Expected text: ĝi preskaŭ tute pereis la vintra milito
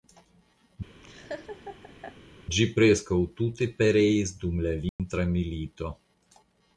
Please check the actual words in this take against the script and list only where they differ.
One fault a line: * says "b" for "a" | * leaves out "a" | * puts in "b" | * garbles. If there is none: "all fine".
* puts in "dum"